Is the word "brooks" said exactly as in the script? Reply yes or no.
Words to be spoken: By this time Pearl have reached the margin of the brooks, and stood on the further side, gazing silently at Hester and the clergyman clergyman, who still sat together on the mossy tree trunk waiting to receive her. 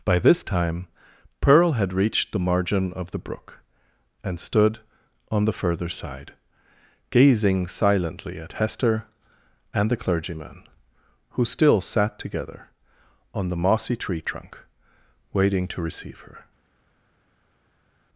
no